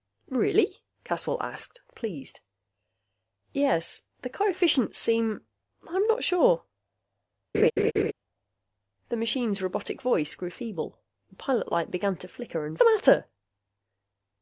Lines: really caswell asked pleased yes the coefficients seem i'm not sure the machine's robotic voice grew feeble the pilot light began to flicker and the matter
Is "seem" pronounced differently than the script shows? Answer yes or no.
no